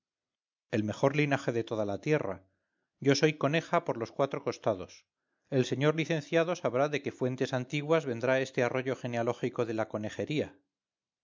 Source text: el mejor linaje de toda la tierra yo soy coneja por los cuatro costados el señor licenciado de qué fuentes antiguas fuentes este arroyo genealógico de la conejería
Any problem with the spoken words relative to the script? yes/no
yes